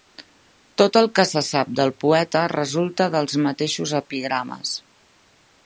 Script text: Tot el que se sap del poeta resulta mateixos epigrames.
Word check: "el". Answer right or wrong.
right